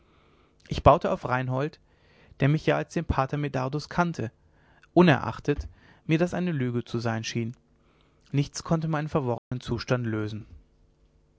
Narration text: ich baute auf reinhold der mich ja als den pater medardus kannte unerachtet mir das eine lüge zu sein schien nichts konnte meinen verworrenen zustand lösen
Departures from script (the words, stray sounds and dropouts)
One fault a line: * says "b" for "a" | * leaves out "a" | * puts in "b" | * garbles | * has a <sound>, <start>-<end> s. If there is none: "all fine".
* has a dropout, 9.4-9.5 s